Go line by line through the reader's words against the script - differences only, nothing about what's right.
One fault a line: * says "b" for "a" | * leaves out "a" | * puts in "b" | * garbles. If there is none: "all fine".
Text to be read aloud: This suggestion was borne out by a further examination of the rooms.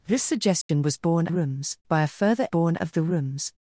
* says "rooms" for "out"
* says "borne" for "examination"